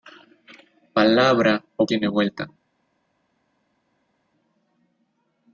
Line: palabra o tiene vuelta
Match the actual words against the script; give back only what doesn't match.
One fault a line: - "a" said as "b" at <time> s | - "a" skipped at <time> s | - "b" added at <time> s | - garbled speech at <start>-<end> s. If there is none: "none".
none